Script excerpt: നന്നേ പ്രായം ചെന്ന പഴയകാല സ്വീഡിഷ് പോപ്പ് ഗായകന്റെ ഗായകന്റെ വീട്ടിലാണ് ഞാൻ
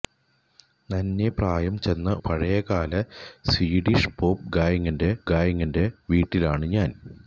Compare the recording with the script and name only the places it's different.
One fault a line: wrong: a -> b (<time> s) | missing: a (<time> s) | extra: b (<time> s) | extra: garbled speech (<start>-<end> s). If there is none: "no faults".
no faults